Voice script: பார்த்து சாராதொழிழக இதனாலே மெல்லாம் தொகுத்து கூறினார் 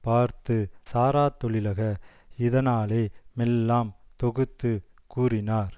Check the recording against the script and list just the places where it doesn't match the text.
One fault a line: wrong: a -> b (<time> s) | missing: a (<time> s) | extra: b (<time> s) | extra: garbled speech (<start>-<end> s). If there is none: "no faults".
no faults